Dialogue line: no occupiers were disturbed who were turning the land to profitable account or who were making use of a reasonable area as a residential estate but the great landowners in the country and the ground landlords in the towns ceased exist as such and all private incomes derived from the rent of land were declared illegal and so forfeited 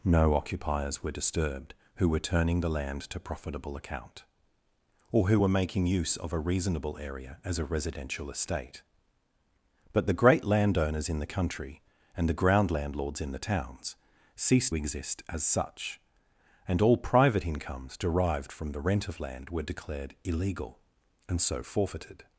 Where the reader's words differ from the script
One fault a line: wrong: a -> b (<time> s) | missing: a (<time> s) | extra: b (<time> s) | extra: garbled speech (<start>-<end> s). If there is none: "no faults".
no faults